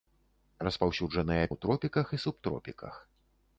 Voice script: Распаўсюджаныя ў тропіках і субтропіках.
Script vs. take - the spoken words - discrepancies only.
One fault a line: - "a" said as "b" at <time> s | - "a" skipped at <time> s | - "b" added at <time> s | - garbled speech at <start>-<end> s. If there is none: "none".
none